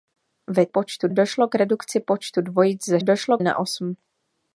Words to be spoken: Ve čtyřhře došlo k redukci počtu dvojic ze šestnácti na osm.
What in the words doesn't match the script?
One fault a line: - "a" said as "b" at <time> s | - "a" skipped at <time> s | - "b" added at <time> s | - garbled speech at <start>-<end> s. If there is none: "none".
- "čtyřhře" said as "počtu" at 0.7 s
- "šestnácti" said as "došlo" at 3.0 s